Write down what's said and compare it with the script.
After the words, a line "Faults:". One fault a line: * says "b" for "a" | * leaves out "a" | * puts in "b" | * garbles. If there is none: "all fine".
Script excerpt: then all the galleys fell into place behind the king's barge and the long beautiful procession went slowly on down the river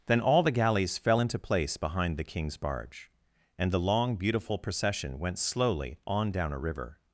then all the galleys fell into place behind the king's barge and the long beautiful procession went slowly on down a river
Faults:
* says "a" for "the"